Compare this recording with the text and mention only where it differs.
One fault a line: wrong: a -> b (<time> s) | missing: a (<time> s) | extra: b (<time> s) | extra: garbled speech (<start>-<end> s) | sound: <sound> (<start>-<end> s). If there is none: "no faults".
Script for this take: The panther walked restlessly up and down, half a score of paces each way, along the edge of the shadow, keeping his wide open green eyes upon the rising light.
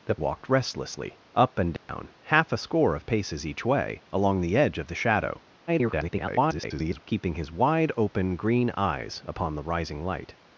missing: panther (0.1 s)
sound: dropout (1.8-1.9 s)
extra: garbled speech (5.7-7.0 s)